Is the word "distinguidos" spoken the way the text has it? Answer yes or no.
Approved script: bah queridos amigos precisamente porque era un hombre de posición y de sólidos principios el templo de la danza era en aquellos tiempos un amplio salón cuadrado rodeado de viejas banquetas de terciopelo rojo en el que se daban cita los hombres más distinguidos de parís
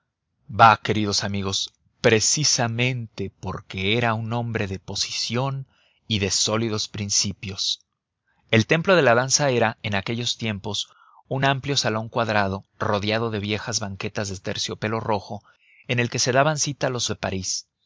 no